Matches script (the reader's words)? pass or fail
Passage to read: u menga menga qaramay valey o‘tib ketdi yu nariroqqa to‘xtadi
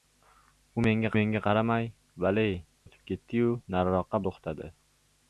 pass